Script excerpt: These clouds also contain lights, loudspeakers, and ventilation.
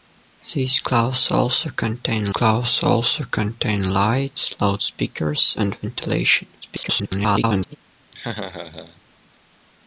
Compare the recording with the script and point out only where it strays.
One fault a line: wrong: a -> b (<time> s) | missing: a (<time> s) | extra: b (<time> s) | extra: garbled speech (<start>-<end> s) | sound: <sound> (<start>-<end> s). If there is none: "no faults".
extra: clouds also contain (2.3 s)
extra: garbled speech (6.6-7.8 s)
sound: laugh (8.1-9.0 s)